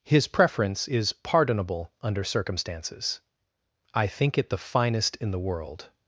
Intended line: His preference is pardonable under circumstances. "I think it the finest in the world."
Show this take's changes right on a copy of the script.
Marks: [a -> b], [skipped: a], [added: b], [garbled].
His preference is pardonable under circumstances. "I think it the finest in the world."